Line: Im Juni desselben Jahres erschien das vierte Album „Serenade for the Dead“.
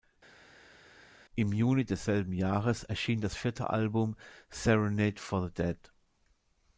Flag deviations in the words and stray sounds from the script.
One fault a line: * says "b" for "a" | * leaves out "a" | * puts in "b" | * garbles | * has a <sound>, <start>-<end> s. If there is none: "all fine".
all fine